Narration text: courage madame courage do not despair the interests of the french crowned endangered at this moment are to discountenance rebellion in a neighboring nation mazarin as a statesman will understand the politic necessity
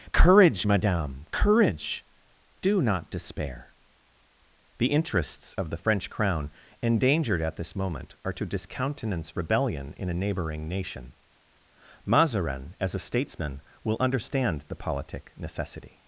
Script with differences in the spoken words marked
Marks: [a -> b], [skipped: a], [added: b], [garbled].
courage madame courage do not despair the interests of the french [crowned -> crown] endangered at this moment are to discountenance rebellion in a neighboring nation mazarin as a statesman will understand the politic necessity